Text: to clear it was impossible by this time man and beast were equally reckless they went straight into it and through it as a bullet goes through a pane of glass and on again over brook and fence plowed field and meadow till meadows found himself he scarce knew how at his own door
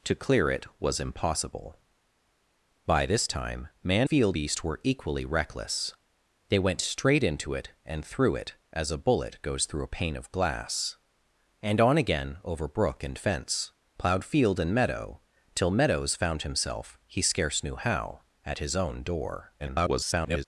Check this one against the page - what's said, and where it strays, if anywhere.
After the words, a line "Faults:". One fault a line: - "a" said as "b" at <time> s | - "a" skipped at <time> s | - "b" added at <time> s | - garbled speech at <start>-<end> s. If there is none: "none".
to clear it was impossible by this time man field beast were equally reckless they went straight into it and through it as a bullet goes through a pane of glass and on again over brook and fence plowed field and meadow till meadows found himself he scarce knew how at his own door [garbled]
Faults:
- "and" said as "field" at 4.0 s
- garbled speech at 19.6-20.4 s